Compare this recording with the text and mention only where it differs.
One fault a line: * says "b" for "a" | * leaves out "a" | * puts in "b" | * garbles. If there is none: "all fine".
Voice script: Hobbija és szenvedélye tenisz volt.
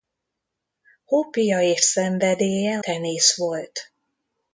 all fine